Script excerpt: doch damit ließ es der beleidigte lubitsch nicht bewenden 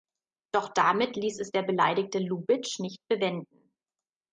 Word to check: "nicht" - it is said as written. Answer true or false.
true